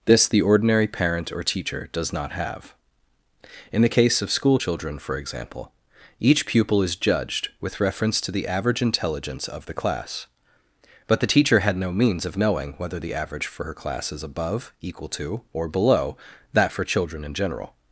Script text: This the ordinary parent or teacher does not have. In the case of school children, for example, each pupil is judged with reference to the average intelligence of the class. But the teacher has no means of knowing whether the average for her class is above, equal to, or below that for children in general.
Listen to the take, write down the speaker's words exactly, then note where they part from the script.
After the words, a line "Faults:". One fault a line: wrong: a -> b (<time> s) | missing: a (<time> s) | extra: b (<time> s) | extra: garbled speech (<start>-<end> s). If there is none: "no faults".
This the ordinary parent or teacher does not have. In the case of school children, for example, each pupil is judged with reference to the average intelligence of the class. But the teacher had no means of knowing whether the average for her class is above, equal to, or below that for children in general.
Faults:
wrong: has -> had (11.6 s)